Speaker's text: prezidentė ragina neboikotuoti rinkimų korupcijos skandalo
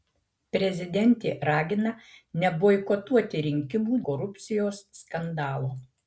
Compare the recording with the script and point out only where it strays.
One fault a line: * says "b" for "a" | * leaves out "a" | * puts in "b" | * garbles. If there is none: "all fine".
all fine